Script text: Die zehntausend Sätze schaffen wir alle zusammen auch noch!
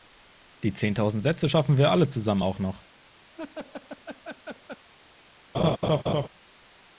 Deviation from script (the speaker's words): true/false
false